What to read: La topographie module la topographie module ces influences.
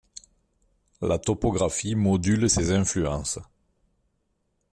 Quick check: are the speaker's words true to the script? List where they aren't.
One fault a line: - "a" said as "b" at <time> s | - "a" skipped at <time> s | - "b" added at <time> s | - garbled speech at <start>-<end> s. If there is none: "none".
- "la topographie module" skipped at 2.5 s